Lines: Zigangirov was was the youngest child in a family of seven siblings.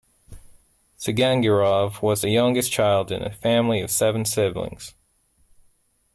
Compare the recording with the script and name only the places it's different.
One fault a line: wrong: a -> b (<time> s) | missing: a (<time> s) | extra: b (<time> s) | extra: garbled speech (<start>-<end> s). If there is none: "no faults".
missing: was (2.2 s)